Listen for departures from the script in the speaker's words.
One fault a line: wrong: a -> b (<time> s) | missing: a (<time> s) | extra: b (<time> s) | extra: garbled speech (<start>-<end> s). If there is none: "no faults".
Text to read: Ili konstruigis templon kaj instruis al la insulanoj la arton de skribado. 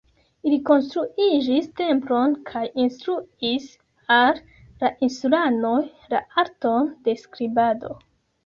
no faults